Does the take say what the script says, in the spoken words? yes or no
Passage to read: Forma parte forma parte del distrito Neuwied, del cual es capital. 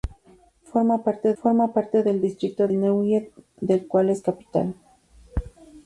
yes